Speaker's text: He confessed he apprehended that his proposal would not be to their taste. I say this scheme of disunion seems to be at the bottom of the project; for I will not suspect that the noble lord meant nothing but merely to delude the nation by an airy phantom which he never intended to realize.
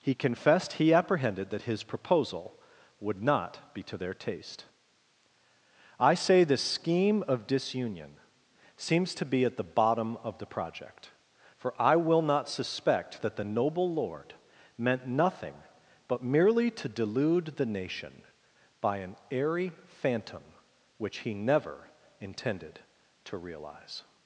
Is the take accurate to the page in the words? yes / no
yes